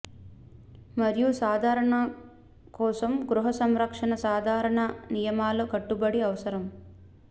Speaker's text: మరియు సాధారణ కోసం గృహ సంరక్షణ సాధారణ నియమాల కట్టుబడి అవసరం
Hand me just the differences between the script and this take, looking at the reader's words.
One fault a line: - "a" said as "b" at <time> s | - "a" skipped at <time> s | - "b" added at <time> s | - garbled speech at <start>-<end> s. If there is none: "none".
none